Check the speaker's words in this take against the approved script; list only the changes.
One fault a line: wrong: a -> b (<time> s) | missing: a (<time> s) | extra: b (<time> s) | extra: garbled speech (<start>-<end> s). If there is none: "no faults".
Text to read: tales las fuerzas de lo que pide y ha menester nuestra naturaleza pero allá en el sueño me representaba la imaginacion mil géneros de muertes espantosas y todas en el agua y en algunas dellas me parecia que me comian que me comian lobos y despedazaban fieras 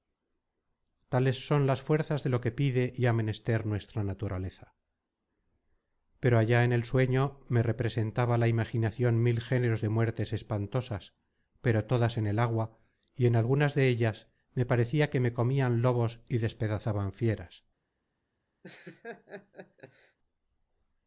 extra: son (1.4 s)
wrong: y -> pero (11.6 s)
missing: que me comian (15.8 s)